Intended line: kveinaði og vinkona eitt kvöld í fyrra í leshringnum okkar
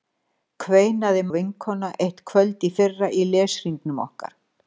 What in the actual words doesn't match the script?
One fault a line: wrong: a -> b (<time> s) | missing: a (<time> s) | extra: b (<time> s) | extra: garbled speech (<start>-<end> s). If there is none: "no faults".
no faults